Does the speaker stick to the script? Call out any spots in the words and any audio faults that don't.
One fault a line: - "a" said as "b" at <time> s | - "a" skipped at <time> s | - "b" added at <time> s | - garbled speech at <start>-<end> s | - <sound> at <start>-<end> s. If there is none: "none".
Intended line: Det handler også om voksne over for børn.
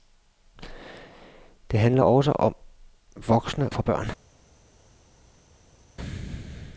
- "over" skipped at 3.7 s